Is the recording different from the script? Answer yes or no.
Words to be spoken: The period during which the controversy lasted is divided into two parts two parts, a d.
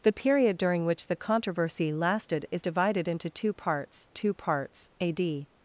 no